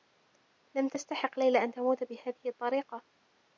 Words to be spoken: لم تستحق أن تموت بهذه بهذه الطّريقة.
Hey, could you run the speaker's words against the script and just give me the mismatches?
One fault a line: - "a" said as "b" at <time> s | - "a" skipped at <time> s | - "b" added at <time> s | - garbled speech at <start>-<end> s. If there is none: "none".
- "ليلى" added at 1.4 s
- "بهذه" skipped at 2.5 s